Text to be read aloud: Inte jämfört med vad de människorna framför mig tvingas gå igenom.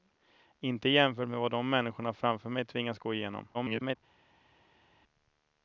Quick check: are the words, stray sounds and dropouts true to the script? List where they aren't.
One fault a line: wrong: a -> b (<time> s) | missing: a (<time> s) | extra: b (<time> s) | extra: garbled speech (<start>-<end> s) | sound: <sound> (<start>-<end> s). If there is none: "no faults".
extra: garbled speech (3.5-4.0 s)